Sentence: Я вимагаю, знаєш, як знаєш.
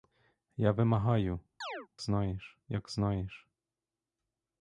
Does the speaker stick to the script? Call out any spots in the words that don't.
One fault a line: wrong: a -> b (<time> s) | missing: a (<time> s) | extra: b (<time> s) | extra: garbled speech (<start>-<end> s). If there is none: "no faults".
no faults